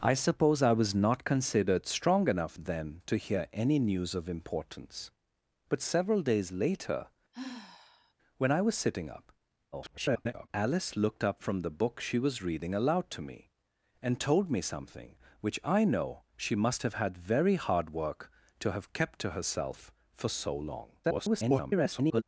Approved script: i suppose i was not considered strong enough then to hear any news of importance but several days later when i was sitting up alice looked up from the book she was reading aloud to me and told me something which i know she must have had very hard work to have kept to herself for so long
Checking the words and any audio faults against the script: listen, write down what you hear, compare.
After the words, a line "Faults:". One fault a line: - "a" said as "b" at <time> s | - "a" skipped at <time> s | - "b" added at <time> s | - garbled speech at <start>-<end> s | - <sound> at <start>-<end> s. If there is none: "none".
i suppose i was not considered strong enough then to hear any news of importance but several days later when i was sitting up [garbled] alice looked up from the book she was reading aloud to me and told me something which i know she must have had very hard work to have kept to herself for so long [garbled]
Faults:
- sigh at 7.3-8.1 s
- garbled speech at 9.7-10.5 s
- garbled speech at 21.0-22.2 s